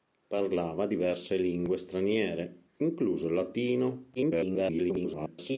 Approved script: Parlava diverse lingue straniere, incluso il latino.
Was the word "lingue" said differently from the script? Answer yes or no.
no